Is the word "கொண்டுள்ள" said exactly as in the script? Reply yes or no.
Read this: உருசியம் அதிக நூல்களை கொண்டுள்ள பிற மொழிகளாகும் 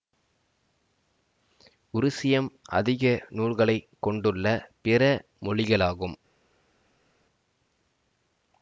yes